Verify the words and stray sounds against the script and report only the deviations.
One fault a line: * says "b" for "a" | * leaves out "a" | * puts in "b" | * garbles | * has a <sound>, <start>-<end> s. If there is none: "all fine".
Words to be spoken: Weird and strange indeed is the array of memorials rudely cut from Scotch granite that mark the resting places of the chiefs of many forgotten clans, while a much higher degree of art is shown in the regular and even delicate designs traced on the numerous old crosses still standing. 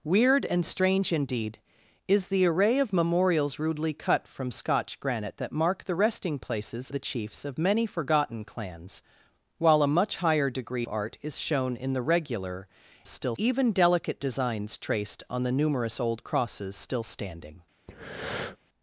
* leaves out "of"
* leaves out "of"
* says "still" for "and"
* has a breath, 17.9-18.6 s